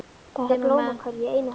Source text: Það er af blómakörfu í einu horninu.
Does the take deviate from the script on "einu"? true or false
false